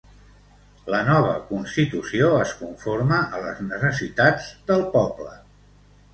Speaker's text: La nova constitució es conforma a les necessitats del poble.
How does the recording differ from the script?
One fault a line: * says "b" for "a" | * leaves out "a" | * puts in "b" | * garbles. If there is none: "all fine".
all fine